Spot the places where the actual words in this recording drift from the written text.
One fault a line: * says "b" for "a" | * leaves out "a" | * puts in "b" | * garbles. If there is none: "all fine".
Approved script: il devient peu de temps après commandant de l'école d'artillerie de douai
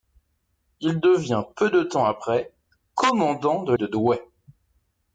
* leaves out "l'école d'artillerie"